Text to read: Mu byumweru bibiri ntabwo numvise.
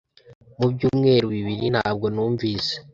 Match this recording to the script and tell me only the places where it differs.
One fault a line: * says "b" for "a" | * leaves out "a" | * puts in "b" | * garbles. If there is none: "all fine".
all fine